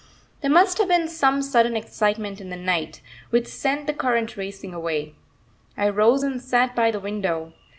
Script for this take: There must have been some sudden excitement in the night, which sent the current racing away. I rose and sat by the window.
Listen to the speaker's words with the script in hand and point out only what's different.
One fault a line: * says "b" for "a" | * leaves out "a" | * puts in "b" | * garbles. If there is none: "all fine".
all fine